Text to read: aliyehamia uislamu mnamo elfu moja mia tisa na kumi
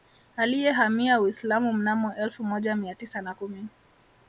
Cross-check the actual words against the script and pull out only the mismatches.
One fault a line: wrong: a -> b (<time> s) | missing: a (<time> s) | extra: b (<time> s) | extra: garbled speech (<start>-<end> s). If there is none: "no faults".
no faults